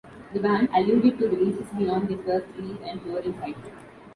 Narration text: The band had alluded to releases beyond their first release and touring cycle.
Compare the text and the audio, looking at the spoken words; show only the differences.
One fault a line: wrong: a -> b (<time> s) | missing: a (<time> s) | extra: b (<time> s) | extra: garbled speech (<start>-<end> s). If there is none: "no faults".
missing: had (0.7 s)